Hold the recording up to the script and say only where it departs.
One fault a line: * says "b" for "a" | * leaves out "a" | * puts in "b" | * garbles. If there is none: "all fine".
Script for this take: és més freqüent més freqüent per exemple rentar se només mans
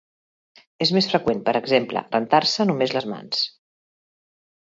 * leaves out "més freqüent"
* puts in "les"